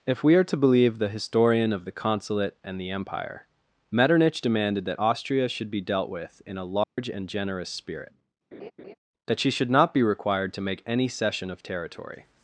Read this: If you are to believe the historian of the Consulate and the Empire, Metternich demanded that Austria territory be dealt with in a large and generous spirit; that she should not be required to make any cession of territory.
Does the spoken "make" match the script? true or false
true